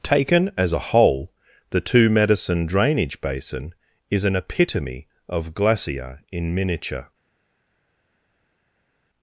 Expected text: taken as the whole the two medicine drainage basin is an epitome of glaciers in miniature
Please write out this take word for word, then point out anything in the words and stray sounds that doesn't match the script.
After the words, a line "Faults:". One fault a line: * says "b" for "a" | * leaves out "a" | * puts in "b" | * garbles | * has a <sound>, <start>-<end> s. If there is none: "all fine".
taken as a whole the two medicine drainage basin is an epitome of glacier in miniature
Faults:
* says "a" for "the"
* says "glacier" for "glaciers"